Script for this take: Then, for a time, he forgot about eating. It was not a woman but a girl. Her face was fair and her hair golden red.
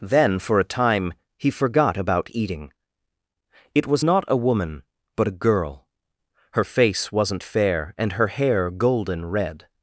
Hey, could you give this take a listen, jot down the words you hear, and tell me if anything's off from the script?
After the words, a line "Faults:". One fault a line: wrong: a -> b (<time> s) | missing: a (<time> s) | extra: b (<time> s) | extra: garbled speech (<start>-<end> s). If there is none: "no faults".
Then, for a time, he forgot about eating. It was not a woman but a girl. Her face wasn't fair and her hair golden red.
Faults:
wrong: was -> wasn't (7.1 s)